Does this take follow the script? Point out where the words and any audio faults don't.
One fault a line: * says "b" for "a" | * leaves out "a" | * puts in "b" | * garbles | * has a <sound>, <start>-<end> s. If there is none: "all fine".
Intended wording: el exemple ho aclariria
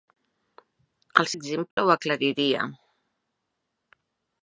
* has a dropout, 1.7-1.8 s